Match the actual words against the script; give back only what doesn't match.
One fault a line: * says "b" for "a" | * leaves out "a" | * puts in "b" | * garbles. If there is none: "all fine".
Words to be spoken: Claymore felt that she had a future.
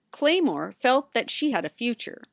all fine